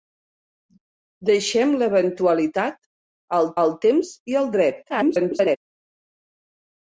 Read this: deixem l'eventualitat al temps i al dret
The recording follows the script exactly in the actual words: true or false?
false